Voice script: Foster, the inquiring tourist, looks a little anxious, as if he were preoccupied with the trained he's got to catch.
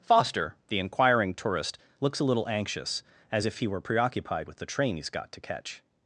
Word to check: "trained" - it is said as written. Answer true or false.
false